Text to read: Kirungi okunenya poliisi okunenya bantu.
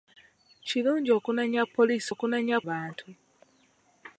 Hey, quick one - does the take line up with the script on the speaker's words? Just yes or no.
yes